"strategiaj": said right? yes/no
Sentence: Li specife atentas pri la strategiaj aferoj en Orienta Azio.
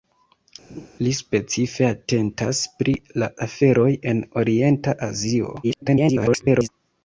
no